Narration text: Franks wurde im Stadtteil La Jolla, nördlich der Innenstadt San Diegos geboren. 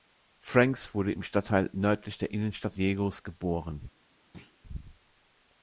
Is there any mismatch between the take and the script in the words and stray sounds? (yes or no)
yes